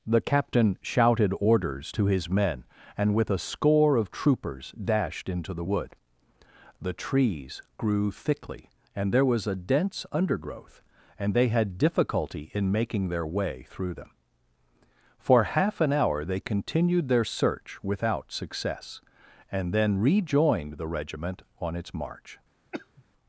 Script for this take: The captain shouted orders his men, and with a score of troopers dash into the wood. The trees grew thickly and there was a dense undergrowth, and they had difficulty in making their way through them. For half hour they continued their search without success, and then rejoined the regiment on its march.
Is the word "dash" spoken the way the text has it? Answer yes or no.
no